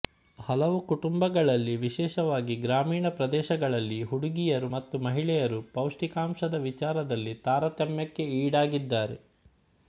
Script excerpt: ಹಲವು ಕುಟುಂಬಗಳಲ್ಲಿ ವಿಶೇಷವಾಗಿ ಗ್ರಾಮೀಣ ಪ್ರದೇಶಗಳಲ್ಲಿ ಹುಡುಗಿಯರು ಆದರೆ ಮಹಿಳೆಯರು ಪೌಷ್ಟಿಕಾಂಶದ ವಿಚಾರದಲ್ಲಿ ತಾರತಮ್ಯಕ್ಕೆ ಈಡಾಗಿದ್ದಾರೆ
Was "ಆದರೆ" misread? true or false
true